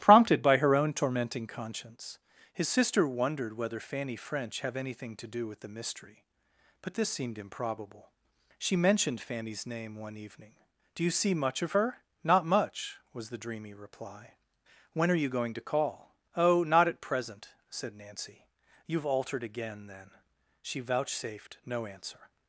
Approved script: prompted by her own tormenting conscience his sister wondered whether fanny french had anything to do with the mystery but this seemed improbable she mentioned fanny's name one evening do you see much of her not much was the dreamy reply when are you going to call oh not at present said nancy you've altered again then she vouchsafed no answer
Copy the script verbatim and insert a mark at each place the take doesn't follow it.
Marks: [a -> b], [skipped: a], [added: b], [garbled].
prompted by her own tormenting conscience his sister wondered whether fanny french [had -> have] anything to do with the mystery but this seemed improbable she mentioned fanny's name one evening do you see much of her not much was the dreamy reply when are you going to call oh not at present said nancy you've altered again then she vouchsafed no answer